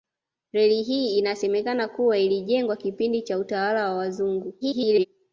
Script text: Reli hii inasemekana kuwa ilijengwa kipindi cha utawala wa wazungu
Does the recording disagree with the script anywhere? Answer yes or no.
yes